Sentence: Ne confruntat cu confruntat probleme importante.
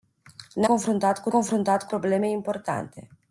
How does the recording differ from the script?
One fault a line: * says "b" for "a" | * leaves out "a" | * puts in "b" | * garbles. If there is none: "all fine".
all fine